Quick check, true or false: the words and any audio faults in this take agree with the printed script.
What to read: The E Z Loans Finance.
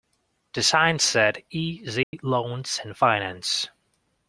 false